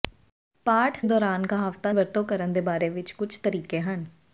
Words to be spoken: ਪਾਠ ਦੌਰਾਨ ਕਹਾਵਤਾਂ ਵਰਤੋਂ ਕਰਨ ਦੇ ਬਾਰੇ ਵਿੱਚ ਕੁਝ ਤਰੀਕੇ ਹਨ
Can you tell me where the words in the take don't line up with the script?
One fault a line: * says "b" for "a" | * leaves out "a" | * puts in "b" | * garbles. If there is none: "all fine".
all fine